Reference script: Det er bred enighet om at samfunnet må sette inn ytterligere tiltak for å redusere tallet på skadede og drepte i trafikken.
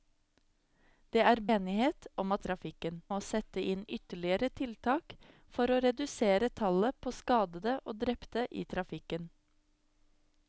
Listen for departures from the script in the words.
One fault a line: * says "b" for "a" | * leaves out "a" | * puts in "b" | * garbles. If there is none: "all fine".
* leaves out "bred"
* says "trafikken" for "samfunnet"